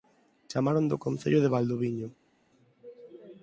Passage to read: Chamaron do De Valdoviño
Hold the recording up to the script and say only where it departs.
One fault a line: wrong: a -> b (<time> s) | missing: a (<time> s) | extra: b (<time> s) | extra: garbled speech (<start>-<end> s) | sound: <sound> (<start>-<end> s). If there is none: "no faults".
extra: Concello (1.1 s)